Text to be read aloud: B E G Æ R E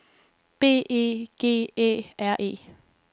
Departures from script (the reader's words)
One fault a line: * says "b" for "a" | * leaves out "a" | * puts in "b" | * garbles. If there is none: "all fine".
all fine